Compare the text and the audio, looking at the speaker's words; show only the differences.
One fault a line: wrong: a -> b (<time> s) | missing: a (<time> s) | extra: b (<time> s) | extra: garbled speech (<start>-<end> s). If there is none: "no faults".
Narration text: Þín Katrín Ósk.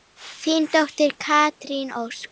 extra: dóttir (0.8 s)